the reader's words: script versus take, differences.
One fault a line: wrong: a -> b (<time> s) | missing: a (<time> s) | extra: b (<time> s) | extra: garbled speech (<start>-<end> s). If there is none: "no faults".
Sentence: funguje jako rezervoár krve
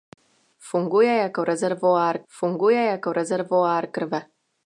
extra: funguje jako rezervoár (2.3 s)